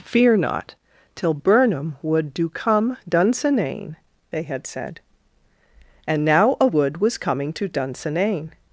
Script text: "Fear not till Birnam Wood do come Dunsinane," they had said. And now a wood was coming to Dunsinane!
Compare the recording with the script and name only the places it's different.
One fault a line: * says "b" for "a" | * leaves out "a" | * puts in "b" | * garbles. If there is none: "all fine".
all fine